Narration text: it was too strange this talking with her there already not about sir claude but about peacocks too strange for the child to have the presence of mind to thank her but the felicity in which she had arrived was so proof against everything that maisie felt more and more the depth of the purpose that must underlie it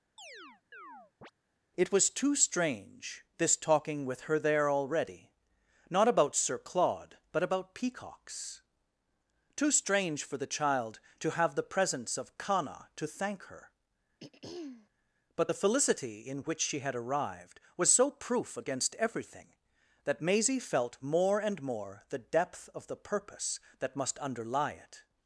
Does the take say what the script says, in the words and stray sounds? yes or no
no